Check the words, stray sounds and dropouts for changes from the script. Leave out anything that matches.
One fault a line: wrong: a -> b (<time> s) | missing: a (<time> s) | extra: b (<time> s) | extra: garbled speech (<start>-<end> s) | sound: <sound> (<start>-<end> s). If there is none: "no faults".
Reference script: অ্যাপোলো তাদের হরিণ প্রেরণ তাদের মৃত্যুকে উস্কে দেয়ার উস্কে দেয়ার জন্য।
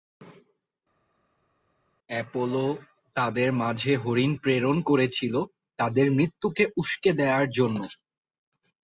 extra: মাঝে (3.6 s)
extra: করেছিল (4.8 s)
missing: উস্কে দেয়ার (7.5 s)